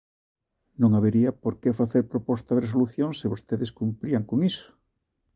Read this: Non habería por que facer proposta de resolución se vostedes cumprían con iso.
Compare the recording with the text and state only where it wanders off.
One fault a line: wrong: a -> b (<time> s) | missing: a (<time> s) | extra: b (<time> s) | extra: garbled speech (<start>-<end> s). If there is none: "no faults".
no faults